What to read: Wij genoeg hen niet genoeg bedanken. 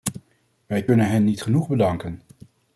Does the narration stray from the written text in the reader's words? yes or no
yes